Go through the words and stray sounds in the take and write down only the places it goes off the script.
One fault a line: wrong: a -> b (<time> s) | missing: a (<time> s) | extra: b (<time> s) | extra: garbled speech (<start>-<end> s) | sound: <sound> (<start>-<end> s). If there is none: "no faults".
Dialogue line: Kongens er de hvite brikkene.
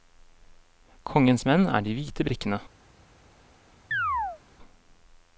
extra: menn (1.5 s)
sound: chirp (3.9-4.4 s)